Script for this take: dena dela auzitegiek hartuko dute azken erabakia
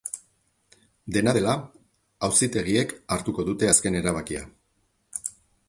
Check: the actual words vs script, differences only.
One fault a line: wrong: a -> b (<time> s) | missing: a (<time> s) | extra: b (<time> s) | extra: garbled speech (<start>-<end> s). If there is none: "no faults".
no faults